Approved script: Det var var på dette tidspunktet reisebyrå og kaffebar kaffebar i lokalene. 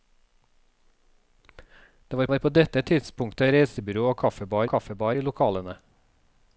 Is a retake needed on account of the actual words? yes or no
no